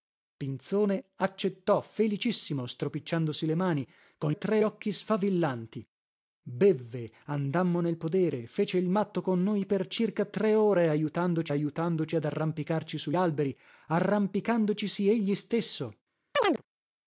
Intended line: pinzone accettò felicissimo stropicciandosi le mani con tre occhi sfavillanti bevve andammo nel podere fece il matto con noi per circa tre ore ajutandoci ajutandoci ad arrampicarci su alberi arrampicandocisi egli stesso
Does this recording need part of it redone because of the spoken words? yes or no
no